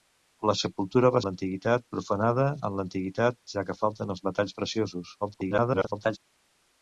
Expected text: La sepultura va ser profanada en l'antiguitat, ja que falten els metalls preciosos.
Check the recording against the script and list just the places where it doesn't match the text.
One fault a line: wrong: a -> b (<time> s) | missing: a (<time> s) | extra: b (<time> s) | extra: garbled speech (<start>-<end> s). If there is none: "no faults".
wrong: ser -> l'antiguitat (1.3 s)
extra: garbled speech (5.2-6.2 s)